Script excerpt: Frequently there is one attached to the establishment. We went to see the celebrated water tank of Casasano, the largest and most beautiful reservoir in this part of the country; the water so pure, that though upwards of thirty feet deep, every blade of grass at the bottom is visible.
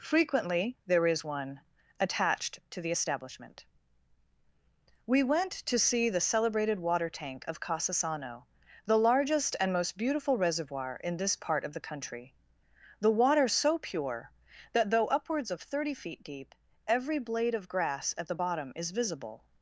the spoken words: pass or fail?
pass